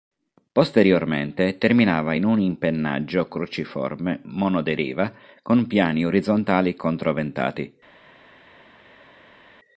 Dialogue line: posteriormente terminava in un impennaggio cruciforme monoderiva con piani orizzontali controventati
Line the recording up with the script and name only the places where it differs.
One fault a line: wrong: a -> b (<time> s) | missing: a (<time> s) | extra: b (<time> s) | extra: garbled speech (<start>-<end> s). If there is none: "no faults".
no faults